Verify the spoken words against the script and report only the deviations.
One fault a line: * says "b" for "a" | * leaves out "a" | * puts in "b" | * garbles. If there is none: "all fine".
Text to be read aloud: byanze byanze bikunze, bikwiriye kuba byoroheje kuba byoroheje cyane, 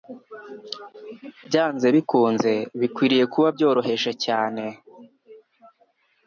* leaves out "byanze"
* leaves out "kuba byoroheje"